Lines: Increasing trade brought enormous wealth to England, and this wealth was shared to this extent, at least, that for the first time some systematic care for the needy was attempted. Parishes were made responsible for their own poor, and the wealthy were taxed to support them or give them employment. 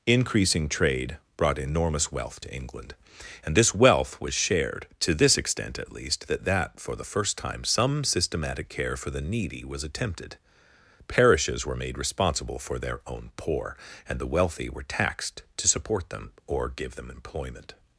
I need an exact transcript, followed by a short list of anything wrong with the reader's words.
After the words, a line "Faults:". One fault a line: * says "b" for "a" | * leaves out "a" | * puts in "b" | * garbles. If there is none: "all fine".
Increasing trade brought enormous wealth to England, and this wealth was shared to this extent, at least, that that for the first time some systematic care for the needy was attempted. Parishes were made responsible for their own poor, and the wealthy were taxed to support them or give them employment.
Faults:
* puts in "that"